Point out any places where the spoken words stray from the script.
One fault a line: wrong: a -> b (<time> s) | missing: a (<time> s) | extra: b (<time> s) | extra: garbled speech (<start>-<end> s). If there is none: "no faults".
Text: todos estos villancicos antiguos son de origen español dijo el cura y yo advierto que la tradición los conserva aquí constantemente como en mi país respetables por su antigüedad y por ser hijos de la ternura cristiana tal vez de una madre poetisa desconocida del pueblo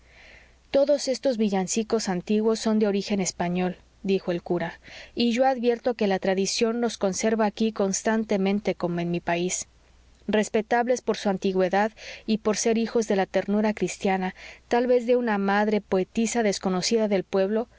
no faults